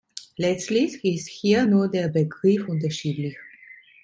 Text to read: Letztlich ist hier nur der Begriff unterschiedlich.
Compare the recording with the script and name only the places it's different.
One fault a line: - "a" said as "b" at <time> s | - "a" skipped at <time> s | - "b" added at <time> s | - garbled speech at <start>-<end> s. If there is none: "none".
none